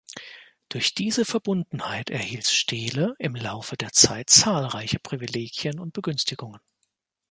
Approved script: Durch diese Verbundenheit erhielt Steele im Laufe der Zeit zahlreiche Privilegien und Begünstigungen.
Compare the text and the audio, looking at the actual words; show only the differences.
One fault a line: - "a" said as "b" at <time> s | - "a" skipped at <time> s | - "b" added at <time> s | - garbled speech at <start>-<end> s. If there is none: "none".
none